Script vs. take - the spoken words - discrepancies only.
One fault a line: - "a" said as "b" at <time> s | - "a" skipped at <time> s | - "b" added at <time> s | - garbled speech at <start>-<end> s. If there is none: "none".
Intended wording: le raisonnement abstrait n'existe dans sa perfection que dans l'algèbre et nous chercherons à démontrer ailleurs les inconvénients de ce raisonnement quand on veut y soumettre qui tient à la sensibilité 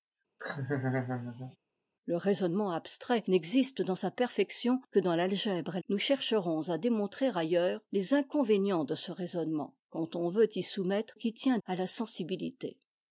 none